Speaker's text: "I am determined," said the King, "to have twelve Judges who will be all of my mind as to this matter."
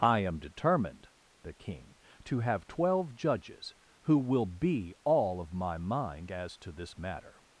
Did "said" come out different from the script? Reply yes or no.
yes